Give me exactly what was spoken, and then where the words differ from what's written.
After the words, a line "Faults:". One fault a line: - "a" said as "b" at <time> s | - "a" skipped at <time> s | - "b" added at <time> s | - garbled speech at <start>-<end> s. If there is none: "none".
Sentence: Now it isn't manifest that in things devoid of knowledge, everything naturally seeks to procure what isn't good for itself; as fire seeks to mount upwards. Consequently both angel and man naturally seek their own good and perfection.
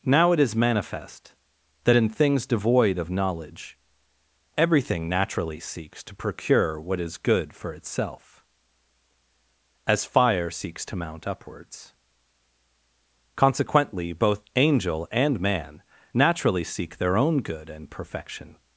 Now it is manifest that in things devoid of knowledge, everything naturally seeks to procure what is good for itself; as fire seeks to mount upwards. Consequently both angel and man naturally seek their own good and perfection.
Faults:
- "isn't" said as "is" at 0.4 s
- "isn't" said as "is" at 7.0 s